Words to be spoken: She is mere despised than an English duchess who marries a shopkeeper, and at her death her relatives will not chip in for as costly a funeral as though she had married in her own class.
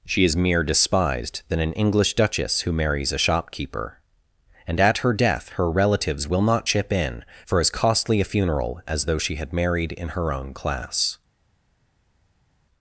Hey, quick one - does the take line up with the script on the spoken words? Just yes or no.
yes